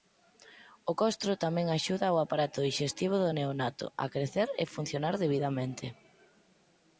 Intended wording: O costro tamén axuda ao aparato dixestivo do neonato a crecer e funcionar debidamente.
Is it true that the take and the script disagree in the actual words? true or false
false